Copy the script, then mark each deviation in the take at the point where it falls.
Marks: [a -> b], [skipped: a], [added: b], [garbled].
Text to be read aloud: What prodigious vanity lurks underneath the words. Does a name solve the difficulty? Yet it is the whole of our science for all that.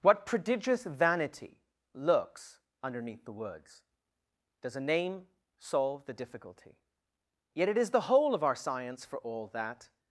What prodigious vanity lurks underneath the words. Does a name solve the difficulty? Yet it is the whole of our science for all that.